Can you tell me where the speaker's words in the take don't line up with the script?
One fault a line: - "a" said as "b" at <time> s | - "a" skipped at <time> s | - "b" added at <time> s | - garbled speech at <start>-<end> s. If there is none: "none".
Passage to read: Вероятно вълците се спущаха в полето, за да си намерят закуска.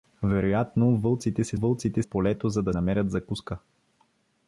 - "спущаха" said as "вълците" at 1.5 s
- "си" skipped at 2.7 s